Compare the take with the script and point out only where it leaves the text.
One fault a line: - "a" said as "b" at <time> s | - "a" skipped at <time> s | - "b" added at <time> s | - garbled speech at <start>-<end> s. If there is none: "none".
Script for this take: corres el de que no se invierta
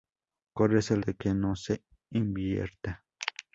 none